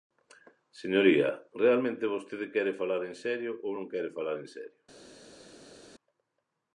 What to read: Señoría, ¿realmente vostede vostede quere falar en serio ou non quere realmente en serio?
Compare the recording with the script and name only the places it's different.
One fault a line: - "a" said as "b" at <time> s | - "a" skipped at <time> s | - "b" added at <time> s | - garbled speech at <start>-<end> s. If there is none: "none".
- "vostede" skipped at 2.5 s
- "realmente" said as "falar" at 4.2 s